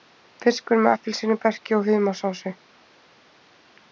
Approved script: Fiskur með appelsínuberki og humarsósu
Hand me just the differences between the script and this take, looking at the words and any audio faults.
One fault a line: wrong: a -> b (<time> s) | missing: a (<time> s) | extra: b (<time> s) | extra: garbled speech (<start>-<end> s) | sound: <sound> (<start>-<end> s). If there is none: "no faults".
no faults